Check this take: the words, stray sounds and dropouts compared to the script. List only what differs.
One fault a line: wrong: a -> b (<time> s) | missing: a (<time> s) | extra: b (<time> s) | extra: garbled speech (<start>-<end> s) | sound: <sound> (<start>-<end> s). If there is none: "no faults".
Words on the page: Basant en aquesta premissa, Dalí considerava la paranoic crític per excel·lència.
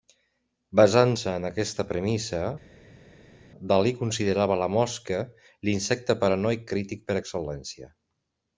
extra: se (1.2 s)
extra: mosca l'insecte (4.8 s)